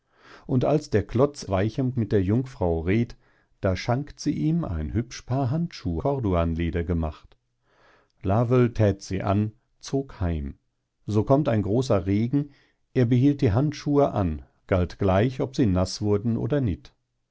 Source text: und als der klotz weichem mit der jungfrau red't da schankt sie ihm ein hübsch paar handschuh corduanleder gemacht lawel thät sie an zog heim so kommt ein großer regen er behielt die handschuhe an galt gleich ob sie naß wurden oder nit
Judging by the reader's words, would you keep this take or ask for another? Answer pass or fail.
pass